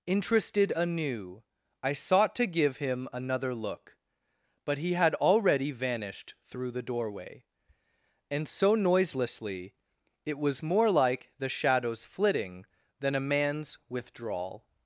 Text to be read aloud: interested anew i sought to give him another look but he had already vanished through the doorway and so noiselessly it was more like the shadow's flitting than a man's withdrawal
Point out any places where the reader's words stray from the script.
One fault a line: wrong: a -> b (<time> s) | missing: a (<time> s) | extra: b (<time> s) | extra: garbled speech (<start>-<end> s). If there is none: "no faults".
no faults